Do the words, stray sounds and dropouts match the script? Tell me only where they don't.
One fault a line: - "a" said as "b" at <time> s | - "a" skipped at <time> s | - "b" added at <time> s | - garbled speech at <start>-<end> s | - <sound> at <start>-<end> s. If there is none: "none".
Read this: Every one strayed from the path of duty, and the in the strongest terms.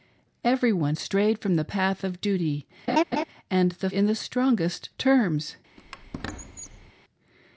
- laugh at 2.9-3.2 s
- squeak at 5.8-6.9 s